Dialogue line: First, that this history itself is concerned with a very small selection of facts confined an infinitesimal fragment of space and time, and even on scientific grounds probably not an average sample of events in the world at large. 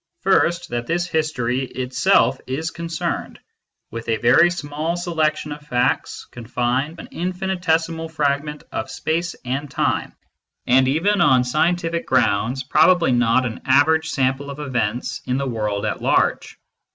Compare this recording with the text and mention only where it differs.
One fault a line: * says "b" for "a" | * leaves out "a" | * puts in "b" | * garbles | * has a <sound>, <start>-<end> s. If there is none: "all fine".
all fine